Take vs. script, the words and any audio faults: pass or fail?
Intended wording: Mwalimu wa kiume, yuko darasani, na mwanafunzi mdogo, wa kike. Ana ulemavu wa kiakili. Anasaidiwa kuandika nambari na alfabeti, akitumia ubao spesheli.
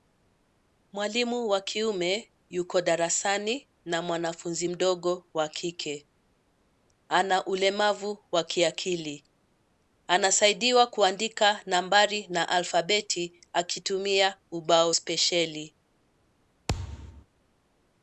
fail